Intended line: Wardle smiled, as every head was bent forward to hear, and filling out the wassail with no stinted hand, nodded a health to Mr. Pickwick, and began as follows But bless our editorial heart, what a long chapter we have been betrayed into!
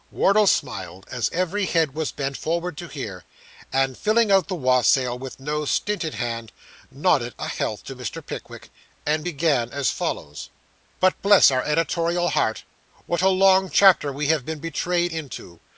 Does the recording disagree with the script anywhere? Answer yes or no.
no